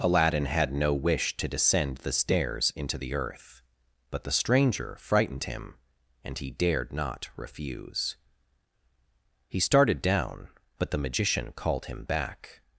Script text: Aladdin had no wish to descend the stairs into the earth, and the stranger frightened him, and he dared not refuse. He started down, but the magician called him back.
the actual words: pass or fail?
fail